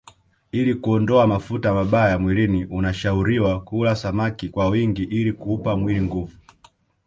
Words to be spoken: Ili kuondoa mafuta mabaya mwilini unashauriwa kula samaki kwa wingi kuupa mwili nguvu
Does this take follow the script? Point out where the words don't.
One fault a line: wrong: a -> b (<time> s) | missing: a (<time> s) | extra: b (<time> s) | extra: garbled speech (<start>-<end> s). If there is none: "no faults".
extra: ili (5.0 s)